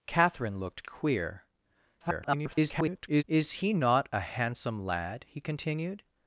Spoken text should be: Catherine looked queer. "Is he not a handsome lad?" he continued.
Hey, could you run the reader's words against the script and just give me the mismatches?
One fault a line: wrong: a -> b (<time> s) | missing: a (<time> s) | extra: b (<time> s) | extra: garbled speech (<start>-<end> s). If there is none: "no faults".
extra: garbled speech (2.0-3.2 s)